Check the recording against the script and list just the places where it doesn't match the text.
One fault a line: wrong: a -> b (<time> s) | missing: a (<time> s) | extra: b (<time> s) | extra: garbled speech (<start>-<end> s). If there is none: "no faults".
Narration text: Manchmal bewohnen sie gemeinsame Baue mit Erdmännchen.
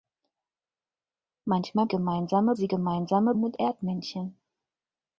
wrong: bewohnen -> gemeinsame (1.9 s)
missing: Baue (3.3 s)